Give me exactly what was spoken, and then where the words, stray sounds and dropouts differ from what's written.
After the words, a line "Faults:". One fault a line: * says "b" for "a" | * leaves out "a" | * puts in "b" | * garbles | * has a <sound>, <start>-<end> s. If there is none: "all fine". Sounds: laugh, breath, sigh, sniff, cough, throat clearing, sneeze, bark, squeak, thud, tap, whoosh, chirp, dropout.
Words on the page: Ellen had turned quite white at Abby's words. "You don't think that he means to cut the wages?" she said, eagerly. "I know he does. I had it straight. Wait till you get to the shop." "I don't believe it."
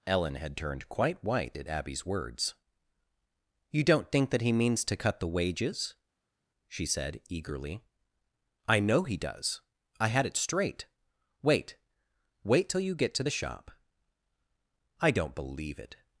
Ellen had turned quite white at Abby's words. "You don't think that he means to cut the wages?" she said, eagerly. "I know he does. I had it straight. Wait Wait till you get to the shop." "I don't believe it."
Faults:
* puts in "Wait"